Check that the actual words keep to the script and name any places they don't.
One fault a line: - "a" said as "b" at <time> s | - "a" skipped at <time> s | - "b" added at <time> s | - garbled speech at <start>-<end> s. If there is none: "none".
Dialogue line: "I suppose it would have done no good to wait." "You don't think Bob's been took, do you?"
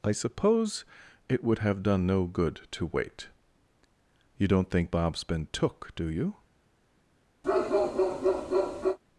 none